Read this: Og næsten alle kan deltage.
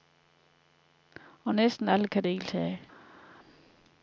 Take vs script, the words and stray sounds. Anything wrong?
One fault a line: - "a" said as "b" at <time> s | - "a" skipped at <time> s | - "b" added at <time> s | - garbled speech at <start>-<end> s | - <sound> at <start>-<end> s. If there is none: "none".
none